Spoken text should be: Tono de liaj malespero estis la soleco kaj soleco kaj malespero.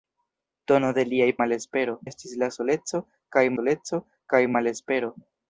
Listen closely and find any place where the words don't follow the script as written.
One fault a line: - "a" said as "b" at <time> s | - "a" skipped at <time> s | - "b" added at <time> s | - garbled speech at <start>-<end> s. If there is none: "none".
none